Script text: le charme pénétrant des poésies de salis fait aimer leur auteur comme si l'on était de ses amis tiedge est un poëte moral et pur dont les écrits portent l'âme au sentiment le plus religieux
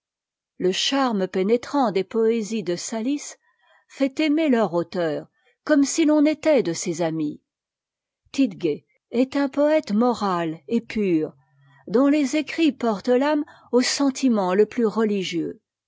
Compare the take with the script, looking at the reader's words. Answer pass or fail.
pass